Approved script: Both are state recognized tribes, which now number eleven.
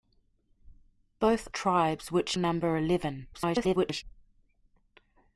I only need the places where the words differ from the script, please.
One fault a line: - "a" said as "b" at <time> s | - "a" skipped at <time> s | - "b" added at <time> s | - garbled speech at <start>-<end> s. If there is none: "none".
- "are state recognized" skipped at 1.5 s
- "now" skipped at 2.4 s
- garbled speech at 3.3-4.0 s